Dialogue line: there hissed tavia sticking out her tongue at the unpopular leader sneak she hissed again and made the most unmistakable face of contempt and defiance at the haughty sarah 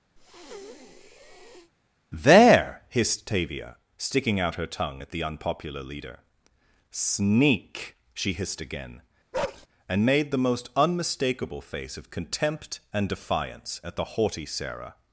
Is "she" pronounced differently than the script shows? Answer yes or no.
no